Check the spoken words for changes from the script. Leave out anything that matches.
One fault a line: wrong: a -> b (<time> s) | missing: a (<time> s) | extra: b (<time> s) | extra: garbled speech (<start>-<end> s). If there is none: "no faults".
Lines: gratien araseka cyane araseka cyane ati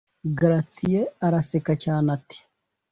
missing: araseka cyane (2.1 s)